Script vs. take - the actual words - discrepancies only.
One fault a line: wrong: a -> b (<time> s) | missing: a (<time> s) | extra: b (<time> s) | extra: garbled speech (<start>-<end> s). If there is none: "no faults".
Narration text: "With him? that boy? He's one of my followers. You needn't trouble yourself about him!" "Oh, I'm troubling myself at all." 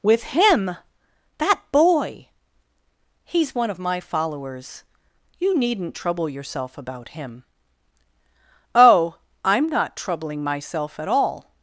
extra: not (9.7 s)